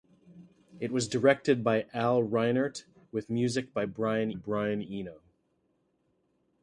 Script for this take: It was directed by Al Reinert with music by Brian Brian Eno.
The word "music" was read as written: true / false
true